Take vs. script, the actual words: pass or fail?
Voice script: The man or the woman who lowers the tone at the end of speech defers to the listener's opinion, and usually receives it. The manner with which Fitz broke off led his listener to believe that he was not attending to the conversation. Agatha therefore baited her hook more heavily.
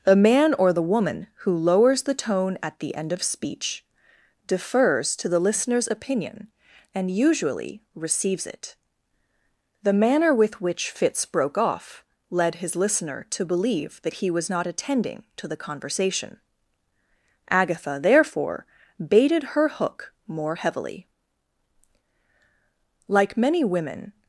fail